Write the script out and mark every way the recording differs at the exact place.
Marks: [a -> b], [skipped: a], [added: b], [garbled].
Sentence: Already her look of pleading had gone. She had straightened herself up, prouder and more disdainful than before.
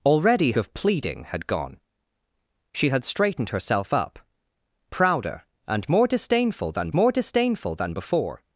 Already [skipped: her look] of pleading had gone. She had straightened herself up, prouder and more disdainful than [added: more disdainful than] before.